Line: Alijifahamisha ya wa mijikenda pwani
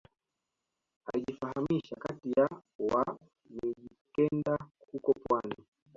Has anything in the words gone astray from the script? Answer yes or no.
yes